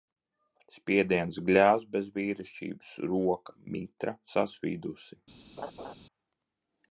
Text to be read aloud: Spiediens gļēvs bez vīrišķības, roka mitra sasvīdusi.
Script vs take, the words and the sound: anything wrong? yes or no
yes